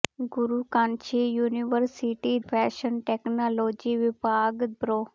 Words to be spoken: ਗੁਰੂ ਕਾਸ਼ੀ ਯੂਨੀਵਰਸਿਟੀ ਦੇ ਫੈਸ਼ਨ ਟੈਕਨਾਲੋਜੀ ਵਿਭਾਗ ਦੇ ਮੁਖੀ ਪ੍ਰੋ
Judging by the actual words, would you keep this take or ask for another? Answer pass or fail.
fail